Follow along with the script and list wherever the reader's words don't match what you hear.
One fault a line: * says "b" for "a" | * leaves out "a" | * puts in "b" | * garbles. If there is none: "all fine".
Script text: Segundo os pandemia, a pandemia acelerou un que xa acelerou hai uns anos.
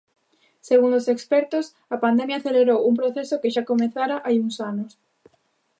* says "expertos" for "pandemia"
* puts in "proceso"
* says "comezara" for "acelerou"